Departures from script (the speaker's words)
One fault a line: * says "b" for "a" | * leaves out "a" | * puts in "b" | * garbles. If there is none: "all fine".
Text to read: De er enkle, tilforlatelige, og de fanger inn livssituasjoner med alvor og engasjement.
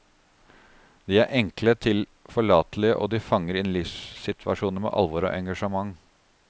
all fine